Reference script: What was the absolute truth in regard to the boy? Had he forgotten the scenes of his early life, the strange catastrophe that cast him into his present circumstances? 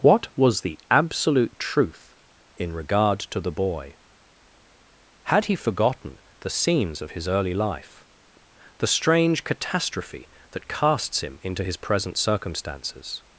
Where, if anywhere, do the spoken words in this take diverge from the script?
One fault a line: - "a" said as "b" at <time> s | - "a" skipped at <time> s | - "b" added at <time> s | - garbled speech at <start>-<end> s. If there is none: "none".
- "cast" said as "casts" at 10.7 s